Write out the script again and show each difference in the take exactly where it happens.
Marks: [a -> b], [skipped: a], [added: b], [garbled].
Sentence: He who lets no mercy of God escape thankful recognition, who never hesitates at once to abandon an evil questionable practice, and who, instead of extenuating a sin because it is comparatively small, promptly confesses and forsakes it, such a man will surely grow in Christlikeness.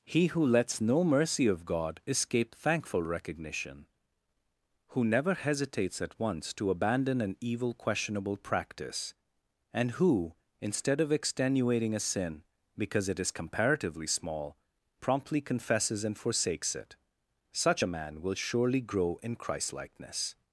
He who lets no mercy of God escape thankful recognition, who never hesitates at once to abandon an evil questionable practice, and who, instead of extenuating a sin because it is comparatively small, promptly confesses and forsakes it, such a man will surely grow in Christlikeness.